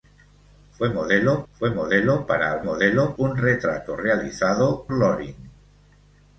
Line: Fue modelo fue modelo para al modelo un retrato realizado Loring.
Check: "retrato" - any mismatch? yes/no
no